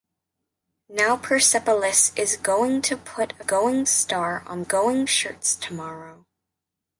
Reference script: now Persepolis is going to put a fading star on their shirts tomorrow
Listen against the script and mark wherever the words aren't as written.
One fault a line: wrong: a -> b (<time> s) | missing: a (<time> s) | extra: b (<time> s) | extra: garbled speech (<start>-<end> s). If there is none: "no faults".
wrong: fading -> going (3.4 s)
wrong: their -> going (4.6 s)